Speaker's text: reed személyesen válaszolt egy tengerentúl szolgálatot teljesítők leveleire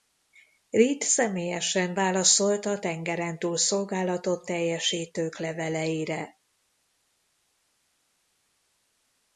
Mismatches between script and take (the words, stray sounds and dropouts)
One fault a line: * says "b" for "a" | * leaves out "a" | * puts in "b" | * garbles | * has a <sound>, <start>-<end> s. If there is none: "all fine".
* says "a" for "egy"